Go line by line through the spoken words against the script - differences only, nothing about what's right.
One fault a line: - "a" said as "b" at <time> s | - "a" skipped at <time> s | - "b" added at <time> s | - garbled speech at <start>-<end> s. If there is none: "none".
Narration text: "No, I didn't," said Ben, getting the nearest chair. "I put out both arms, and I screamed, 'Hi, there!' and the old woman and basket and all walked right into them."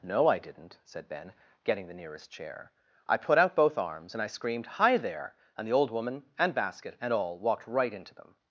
none